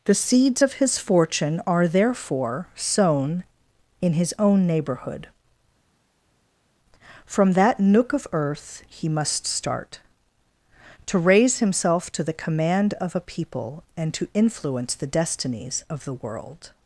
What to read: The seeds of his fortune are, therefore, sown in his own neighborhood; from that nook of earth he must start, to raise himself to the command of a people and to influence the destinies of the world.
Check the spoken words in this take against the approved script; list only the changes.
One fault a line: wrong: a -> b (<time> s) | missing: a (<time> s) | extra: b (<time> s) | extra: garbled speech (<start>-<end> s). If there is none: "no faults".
no faults